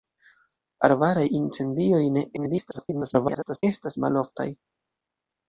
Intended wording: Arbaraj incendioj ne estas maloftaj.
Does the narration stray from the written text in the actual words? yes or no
yes